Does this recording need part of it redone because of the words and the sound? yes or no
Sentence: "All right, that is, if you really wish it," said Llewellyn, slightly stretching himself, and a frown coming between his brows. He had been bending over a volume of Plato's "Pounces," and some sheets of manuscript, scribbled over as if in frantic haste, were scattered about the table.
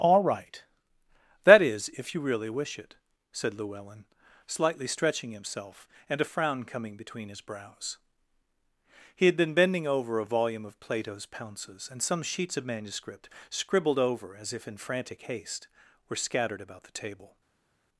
no